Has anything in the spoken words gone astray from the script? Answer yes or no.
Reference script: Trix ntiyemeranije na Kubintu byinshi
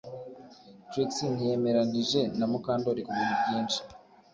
yes